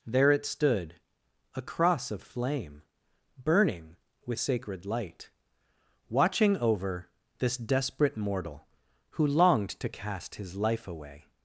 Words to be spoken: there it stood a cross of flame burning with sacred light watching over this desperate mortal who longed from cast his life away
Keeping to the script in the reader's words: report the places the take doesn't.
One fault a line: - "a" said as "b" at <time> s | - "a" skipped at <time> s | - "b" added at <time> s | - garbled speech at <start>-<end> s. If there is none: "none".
- "from" said as "to" at 9.7 s